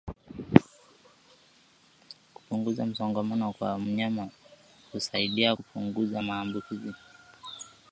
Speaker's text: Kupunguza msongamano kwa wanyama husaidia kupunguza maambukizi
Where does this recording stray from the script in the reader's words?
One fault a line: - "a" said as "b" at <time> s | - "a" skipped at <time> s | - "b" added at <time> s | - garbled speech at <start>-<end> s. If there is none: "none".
none